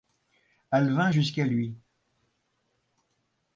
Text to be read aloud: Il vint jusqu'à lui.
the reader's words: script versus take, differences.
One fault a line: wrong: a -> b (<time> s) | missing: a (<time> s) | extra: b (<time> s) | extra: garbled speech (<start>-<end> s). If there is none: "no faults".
wrong: Il -> Elle (0.7 s)